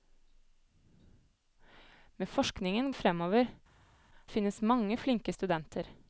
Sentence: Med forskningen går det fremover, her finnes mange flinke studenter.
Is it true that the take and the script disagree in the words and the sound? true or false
true